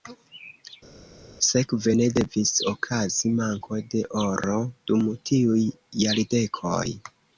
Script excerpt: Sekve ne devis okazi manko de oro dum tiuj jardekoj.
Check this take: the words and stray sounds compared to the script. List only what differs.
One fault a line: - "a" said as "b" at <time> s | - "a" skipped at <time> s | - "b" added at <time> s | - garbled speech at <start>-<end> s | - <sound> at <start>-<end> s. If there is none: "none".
none